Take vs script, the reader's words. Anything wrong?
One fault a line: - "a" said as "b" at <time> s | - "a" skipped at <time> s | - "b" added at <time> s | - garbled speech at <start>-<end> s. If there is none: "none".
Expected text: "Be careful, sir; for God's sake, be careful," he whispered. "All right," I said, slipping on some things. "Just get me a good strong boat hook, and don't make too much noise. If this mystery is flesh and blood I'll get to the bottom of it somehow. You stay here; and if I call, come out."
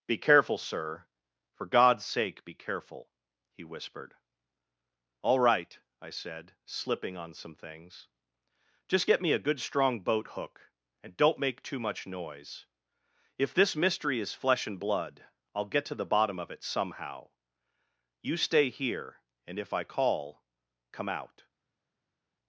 none